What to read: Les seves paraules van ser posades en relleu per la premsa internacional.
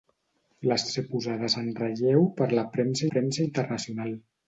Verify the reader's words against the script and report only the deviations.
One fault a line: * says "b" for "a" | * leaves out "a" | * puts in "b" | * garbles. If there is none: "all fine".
* leaves out "seves paraules van"
* puts in "premsa"